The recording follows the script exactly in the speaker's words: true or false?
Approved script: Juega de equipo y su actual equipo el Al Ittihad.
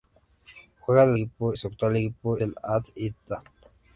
true